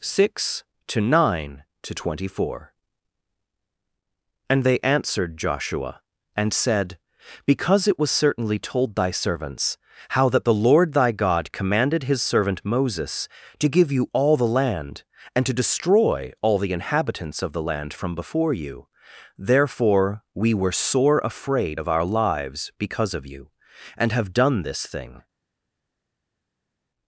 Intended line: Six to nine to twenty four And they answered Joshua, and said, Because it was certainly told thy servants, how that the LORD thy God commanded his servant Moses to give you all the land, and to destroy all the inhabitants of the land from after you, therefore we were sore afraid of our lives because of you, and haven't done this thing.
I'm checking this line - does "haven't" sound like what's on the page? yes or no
no